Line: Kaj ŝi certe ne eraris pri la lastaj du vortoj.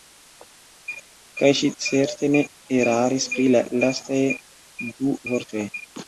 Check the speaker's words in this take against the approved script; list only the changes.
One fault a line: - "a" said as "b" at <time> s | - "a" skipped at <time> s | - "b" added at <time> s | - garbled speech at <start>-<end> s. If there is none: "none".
none